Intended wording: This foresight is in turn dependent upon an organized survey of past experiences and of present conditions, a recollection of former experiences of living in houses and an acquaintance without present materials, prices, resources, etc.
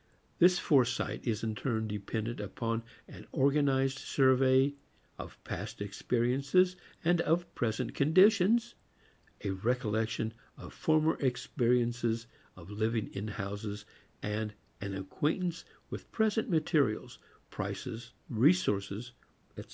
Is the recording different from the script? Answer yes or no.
yes